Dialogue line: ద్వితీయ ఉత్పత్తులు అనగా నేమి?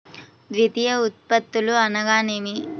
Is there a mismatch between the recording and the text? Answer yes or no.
no